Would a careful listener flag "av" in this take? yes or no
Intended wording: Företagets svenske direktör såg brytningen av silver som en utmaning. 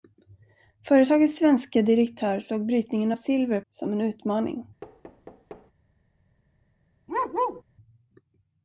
no